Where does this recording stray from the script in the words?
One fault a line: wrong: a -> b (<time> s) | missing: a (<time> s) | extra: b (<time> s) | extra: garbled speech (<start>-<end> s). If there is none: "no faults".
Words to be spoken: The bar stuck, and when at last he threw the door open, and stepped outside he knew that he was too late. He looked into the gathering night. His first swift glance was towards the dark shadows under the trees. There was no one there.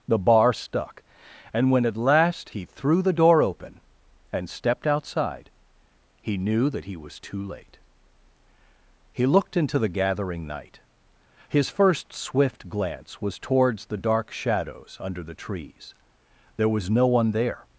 no faults